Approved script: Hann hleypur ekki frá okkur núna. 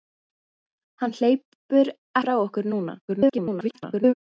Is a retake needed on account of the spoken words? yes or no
yes